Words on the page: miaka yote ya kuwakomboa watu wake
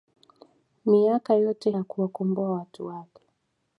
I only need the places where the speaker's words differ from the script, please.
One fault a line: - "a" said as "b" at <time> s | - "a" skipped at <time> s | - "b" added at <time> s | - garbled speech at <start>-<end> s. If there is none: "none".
none